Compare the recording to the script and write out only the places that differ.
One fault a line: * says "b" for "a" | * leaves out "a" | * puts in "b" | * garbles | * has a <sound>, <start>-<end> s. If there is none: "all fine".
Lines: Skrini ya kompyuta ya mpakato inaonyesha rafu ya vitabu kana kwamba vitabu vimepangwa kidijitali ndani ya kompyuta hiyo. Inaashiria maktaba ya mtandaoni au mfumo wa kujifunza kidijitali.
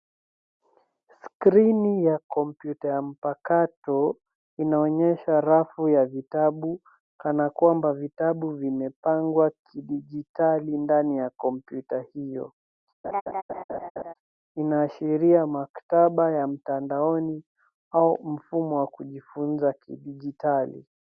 * has a laugh, 13.0-14.1 s